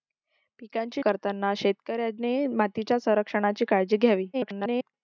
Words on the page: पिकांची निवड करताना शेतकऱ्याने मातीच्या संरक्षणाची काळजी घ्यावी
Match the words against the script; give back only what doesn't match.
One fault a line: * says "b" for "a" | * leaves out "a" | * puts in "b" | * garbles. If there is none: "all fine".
* leaves out "निवड"
* garbles